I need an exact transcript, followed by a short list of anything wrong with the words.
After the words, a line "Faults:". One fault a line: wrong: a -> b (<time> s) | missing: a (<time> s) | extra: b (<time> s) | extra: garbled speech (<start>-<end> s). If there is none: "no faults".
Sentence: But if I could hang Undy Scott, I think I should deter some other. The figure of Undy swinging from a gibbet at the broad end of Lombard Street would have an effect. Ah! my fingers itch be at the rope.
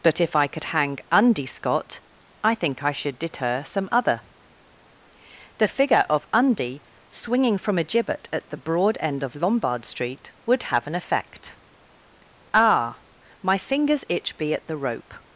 But if I could hang Undy Scott, I think I should deter some other. The figure of Undy swinging from a gibbet at the broad end of Lombard Street would have an effect. Ah! my fingers itch be at the rope.
Faults:
no faults